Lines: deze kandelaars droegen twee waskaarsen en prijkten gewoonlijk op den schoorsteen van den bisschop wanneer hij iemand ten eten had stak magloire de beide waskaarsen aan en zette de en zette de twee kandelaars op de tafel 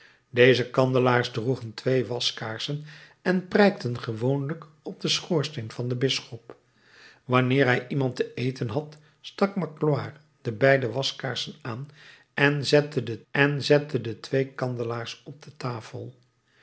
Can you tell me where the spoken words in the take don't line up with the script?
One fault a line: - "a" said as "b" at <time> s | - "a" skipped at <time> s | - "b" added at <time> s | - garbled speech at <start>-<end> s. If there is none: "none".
none